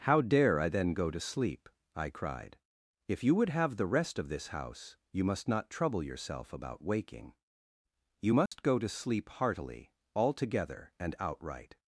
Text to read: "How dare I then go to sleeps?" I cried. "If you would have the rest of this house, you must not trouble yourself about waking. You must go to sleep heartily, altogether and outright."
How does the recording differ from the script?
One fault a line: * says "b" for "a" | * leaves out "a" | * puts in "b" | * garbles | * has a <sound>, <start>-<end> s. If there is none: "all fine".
* says "sleep" for "sleeps"
* has a dropout, 8.5-8.5 s